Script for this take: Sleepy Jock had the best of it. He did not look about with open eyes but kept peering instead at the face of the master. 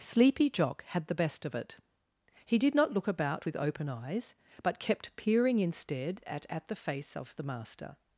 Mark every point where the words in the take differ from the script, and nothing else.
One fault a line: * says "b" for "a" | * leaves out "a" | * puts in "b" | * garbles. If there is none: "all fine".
* puts in "at"